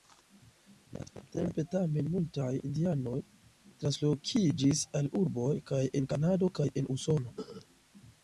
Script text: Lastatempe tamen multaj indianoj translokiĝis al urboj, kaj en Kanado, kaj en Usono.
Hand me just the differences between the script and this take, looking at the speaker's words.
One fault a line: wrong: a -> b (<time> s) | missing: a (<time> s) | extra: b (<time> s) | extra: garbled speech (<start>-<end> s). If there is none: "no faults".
no faults